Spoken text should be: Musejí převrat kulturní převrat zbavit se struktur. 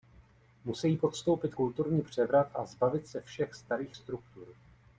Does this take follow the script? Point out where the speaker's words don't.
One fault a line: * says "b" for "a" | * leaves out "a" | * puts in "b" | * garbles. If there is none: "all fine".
* says "podstoupit" for "převrat"
* puts in "a"
* puts in "všech starých"